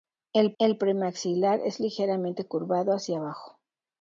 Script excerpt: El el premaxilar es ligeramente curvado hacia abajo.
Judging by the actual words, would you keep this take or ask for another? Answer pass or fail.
pass